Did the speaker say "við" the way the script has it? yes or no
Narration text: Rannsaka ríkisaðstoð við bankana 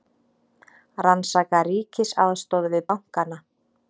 yes